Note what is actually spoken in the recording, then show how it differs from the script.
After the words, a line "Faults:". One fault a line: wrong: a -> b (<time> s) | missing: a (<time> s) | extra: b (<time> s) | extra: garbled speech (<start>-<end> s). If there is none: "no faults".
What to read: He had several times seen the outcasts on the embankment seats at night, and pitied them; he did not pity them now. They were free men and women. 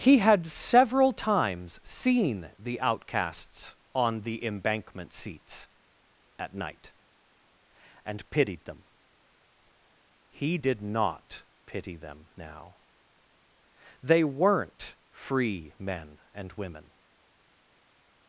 He had several times seen the outcasts on the embankment seats at night, and pitied them; he did not pity them now. They weren't free men and women.
Faults:
wrong: were -> weren't (14.2 s)